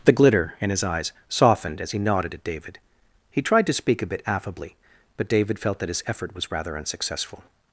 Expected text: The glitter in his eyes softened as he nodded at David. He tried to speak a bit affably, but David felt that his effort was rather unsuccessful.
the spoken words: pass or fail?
pass